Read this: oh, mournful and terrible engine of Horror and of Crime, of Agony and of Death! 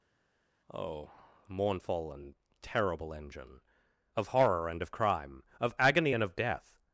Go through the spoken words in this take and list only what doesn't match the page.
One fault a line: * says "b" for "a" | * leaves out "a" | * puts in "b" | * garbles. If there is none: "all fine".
all fine